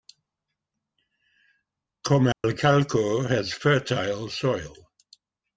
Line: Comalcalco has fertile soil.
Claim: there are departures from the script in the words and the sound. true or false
true